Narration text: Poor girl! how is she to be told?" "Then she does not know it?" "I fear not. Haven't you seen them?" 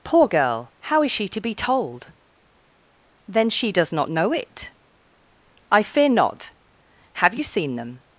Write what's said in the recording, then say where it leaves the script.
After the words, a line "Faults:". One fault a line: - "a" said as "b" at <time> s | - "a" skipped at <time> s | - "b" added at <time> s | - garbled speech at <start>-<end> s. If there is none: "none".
Poor girl! how is she to be told?" "Then she does not know it?" "I fear not. Have you seen them?"
Faults:
- "Haven't" said as "Have" at 7.1 s